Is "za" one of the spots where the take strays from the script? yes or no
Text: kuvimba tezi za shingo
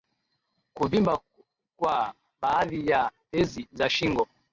no